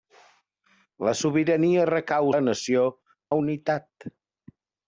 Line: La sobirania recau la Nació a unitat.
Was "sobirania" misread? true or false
false